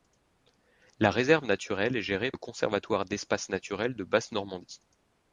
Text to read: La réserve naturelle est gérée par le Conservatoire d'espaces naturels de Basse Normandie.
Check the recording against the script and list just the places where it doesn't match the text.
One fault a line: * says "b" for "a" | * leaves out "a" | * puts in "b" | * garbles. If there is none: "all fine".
* leaves out "par"